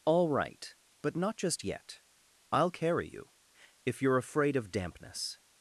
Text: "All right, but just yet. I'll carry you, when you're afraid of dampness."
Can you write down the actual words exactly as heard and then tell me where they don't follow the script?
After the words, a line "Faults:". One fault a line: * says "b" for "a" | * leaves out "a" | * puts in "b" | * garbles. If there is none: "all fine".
"All right, but not just yet. I'll carry you, if you're afraid of dampness."
Faults:
* puts in "not"
* says "if" for "when"